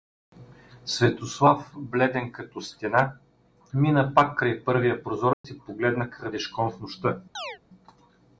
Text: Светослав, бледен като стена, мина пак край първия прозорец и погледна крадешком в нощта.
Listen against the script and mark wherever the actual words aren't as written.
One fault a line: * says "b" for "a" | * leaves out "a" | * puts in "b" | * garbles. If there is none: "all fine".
all fine